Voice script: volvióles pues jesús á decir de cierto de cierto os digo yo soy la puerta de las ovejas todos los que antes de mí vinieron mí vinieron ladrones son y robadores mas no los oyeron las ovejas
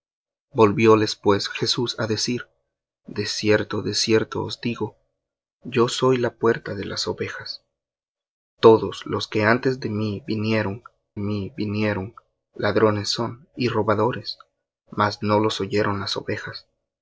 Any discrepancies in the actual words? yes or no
no